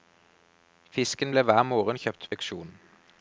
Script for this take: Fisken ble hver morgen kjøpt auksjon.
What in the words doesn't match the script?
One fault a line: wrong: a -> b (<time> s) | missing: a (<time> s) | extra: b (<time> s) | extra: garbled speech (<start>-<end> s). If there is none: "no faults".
no faults